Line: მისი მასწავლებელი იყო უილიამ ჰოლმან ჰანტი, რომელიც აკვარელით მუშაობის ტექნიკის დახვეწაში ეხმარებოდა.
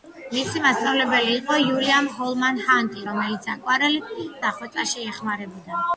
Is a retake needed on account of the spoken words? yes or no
yes